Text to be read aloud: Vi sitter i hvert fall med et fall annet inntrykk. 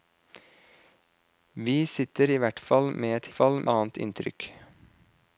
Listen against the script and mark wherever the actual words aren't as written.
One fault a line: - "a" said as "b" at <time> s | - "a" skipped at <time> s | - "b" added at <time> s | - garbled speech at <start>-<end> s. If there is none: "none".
none